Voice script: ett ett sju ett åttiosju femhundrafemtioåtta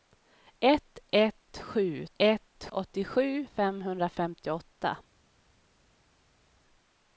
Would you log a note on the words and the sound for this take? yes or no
no